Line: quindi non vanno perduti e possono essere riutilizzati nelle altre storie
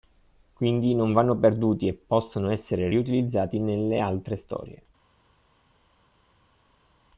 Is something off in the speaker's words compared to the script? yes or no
no